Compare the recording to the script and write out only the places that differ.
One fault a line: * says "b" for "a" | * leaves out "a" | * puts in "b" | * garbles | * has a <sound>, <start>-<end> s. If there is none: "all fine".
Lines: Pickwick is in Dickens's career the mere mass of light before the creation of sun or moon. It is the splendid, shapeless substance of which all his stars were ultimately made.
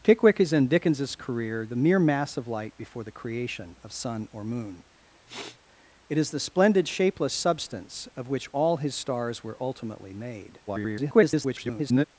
* has a sniff, 5.3-5.6 s
* garbles